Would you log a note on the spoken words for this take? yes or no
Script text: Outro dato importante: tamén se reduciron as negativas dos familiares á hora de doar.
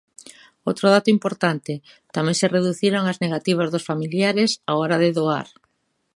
no